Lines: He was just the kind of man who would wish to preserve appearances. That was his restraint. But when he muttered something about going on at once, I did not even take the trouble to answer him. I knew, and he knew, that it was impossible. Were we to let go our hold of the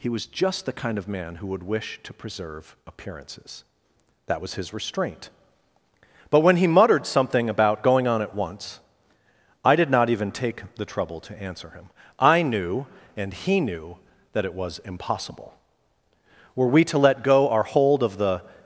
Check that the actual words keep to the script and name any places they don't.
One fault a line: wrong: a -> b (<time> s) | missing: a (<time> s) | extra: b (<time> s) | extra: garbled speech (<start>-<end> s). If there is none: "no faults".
no faults